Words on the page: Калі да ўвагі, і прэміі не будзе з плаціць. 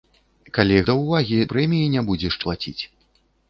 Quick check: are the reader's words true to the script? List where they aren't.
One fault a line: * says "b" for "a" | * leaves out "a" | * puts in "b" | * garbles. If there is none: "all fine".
all fine